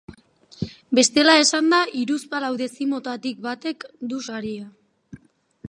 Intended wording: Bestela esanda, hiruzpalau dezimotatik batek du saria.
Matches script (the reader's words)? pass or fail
pass